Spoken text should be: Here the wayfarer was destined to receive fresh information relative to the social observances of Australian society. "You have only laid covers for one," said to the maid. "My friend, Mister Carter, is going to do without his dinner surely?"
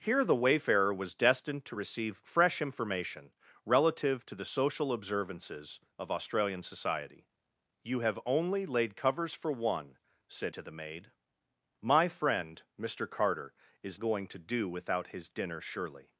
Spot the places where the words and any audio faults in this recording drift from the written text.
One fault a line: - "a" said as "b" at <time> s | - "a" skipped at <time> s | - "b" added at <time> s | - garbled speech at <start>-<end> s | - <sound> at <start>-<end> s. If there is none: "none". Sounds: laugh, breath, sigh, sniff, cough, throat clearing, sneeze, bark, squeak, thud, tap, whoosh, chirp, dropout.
none